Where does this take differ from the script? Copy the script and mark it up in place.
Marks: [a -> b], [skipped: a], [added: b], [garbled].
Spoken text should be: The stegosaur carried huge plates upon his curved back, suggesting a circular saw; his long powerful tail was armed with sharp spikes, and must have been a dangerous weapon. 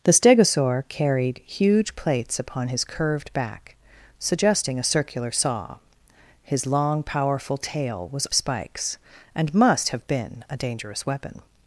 The stegosaur carried huge plates upon his curved back, suggesting a circular saw; his long powerful tail was [skipped: armed with sharp] spikes, and must have been a dangerous weapon.